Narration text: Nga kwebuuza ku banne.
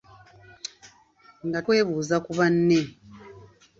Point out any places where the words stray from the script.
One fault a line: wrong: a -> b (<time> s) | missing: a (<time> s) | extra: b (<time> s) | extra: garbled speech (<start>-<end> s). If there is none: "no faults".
no faults